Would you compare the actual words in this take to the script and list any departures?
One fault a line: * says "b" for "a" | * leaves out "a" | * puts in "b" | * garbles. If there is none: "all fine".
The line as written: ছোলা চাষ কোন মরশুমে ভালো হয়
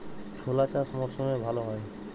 * leaves out "কোন"